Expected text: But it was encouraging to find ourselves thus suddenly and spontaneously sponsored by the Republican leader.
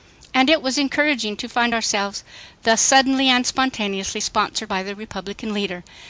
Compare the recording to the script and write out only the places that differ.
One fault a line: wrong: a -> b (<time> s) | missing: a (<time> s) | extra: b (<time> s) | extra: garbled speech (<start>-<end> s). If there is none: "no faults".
wrong: But -> And (0.3 s)